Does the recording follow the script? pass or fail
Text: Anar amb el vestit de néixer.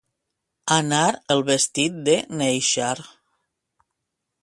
fail